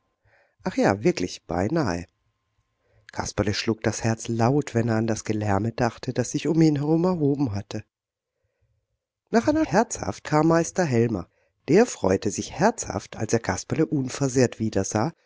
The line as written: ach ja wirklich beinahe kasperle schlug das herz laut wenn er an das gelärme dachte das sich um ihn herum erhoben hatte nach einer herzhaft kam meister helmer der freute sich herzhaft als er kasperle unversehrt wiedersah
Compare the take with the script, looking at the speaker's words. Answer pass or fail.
pass